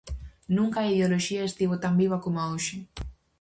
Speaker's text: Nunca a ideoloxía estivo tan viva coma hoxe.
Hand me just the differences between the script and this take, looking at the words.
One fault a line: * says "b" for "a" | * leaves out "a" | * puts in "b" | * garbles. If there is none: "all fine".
all fine